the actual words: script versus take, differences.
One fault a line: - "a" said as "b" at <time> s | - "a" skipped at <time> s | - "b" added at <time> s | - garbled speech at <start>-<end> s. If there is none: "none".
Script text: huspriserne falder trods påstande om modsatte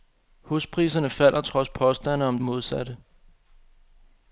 none